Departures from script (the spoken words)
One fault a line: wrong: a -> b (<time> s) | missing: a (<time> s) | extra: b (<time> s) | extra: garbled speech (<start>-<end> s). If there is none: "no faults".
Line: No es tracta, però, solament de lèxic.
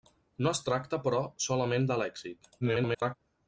extra: garbled speech (2.6-3.2 s)